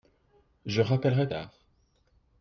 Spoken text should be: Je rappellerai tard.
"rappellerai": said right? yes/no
yes